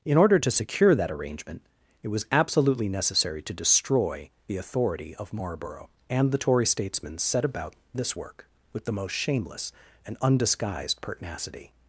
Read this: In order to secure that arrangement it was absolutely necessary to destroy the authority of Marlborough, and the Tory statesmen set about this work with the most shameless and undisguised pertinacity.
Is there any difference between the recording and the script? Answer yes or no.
no